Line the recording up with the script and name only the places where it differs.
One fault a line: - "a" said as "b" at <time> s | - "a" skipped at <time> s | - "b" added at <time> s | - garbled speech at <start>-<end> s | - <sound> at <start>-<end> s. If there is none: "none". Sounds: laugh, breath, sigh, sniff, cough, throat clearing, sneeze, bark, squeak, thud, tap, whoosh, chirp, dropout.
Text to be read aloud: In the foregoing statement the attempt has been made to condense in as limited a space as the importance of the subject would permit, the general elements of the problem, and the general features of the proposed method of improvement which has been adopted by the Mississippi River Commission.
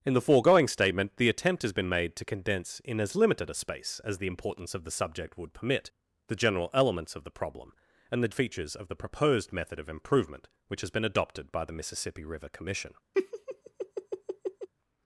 - "general" skipped at 8.3 s
- laugh at 13.1-14.7 s